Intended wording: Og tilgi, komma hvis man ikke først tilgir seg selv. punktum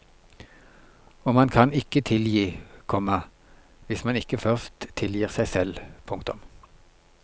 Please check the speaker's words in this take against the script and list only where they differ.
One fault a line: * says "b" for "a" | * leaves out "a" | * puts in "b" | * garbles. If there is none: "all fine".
* puts in "man kan ikke"